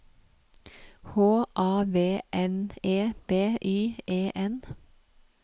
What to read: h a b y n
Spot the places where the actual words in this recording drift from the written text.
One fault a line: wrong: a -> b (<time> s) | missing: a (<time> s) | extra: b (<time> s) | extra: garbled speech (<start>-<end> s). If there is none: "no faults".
extra: v n e (1.9 s)
extra: e (4.1 s)